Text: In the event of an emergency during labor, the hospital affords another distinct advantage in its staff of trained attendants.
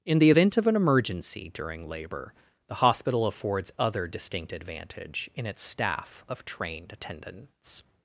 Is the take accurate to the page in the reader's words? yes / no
no